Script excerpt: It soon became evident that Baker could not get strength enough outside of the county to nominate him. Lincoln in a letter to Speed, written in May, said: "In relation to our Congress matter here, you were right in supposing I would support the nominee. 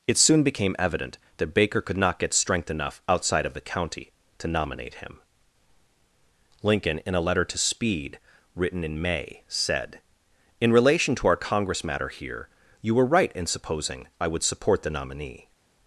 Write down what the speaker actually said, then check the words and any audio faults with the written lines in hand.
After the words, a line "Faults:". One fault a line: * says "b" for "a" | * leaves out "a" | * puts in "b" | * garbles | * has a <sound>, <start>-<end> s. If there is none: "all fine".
It soon became evident that Baker could not get strength enough outside of the county to nominate him. Lincoln in a letter to Speed, written in May, said: "In relation to our Congress matter here, you were right in supposing I would support the nominee.
Faults:
all fine